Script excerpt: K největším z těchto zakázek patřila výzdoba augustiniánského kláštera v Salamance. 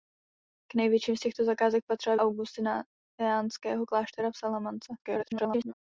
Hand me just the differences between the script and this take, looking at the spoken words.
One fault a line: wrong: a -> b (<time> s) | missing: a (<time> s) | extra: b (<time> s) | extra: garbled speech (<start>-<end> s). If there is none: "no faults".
missing: výzdoba (2.1 s)
extra: garbled speech (5.0-5.7 s)